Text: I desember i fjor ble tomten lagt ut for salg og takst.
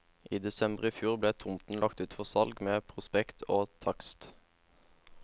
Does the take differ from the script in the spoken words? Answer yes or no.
yes